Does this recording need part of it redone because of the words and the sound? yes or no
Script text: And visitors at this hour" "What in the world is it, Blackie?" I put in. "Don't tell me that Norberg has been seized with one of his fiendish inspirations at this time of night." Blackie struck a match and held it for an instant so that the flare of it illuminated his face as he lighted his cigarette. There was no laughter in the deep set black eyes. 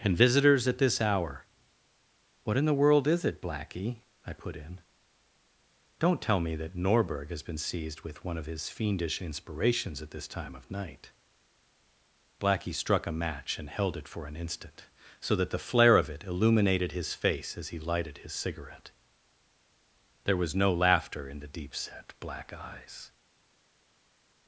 no